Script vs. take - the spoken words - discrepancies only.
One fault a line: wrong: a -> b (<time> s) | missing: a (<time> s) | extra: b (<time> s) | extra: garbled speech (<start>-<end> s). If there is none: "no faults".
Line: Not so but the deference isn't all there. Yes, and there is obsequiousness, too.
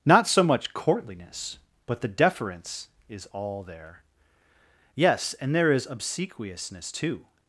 extra: much courtliness (0.4 s)
wrong: isn't -> is (3.1 s)